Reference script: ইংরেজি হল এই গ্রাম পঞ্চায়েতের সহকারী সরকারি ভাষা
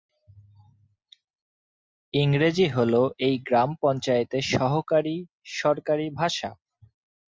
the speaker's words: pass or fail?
pass